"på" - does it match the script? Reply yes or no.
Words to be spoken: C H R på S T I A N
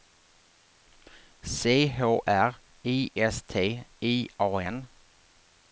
no